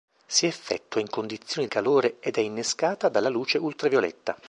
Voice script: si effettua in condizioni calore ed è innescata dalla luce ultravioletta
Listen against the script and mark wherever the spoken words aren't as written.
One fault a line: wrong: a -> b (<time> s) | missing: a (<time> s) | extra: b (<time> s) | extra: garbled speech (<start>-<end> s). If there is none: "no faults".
no faults